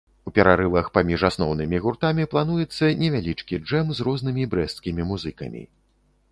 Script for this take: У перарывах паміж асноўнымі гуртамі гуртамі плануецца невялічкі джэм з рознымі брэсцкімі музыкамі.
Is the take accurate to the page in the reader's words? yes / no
no